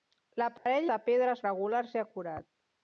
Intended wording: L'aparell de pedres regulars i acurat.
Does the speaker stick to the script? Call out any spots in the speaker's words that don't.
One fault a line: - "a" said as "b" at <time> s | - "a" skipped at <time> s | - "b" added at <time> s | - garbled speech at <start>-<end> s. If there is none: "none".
none